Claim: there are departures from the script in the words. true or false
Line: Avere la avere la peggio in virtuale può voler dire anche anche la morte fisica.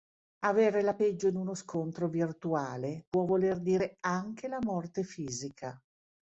true